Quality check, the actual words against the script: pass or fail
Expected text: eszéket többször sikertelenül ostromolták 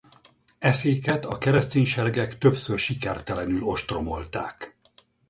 fail